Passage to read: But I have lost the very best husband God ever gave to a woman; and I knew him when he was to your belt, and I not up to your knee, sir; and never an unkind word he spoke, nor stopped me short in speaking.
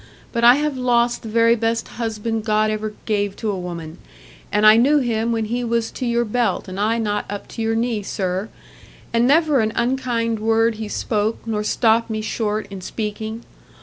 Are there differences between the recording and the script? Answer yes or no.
no